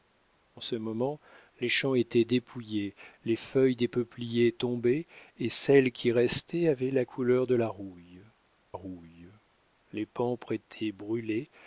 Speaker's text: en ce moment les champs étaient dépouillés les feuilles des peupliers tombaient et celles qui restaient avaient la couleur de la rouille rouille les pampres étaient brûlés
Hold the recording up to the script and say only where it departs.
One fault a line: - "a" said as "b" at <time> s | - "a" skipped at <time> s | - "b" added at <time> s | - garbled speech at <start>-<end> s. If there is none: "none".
none